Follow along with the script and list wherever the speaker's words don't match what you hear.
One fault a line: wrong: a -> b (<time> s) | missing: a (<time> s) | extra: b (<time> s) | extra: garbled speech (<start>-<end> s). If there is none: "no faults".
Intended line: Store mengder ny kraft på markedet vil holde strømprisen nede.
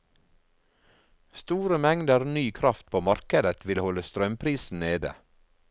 no faults